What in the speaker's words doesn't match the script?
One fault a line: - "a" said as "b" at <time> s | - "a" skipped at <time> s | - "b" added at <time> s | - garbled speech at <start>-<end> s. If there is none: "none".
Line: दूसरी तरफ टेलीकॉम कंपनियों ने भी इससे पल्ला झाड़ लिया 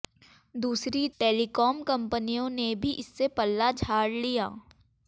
- "तरफ" skipped at 1.1 s